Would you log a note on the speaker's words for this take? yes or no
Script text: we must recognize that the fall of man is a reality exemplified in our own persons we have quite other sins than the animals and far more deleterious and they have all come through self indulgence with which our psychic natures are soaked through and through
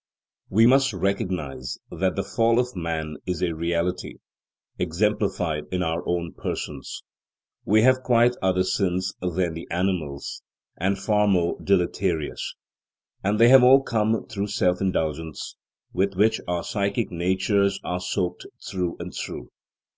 no